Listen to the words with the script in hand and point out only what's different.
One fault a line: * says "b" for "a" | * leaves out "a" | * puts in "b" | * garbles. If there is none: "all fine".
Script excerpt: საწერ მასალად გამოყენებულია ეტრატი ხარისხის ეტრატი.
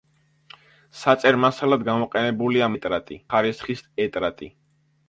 all fine